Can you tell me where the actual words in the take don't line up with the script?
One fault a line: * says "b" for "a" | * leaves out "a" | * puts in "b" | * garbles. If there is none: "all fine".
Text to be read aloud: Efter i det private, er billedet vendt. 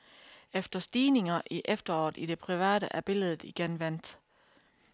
* puts in "stigninger"
* puts in "efteråret i"
* puts in "igen"